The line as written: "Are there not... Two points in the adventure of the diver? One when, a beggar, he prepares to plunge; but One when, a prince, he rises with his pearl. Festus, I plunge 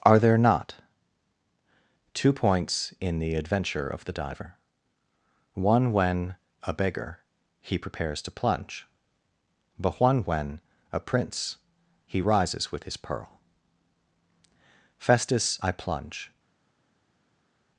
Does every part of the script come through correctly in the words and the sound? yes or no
yes